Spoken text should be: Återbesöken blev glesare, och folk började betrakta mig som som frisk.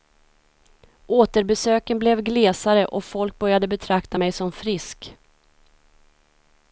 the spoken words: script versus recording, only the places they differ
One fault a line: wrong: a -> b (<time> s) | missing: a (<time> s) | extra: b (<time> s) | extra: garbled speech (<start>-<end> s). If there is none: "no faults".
missing: som (4.5 s)